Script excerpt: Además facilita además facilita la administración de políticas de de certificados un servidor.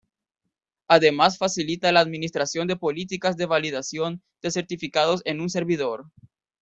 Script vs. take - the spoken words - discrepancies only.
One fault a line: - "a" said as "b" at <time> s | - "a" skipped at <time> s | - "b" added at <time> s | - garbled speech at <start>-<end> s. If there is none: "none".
- "además facilita" skipped at 1.9 s
- "validación" added at 3.5 s
- "en" added at 5.2 s